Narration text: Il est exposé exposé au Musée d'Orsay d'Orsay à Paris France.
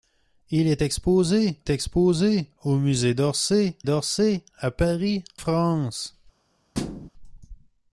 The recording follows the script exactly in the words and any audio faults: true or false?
false